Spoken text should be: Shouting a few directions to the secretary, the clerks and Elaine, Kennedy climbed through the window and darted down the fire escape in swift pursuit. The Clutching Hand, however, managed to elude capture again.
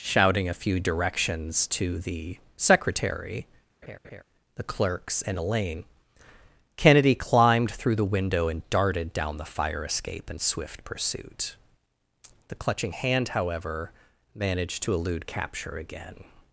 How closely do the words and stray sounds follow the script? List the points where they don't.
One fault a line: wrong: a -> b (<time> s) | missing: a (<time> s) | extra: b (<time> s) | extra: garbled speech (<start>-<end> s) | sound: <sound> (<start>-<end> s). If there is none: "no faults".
sound: laugh (3.8-4.2 s)